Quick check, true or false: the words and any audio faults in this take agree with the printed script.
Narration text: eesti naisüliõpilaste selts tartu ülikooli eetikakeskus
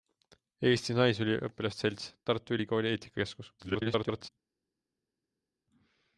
false